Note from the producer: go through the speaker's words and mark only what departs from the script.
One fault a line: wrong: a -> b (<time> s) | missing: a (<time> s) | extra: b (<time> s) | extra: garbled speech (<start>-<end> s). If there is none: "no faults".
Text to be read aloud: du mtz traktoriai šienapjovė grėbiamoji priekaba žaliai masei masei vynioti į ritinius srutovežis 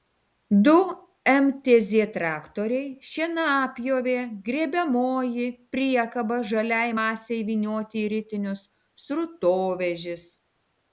missing: masei (7.4 s)